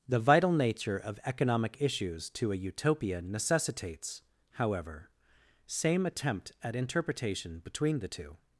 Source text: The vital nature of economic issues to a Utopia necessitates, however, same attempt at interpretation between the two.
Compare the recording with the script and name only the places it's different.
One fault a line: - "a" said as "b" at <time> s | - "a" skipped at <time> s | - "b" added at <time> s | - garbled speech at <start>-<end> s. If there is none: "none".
none